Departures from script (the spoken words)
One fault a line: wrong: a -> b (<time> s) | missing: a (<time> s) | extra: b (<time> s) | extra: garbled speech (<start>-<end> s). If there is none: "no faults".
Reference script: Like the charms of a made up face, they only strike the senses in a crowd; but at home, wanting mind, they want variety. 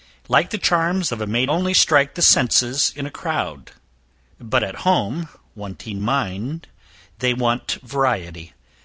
missing: up face they (1.5 s)